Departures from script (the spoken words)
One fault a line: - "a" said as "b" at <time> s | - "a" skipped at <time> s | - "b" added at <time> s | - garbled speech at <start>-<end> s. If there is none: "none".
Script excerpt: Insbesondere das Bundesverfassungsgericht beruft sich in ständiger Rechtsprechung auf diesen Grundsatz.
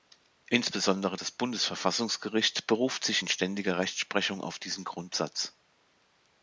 none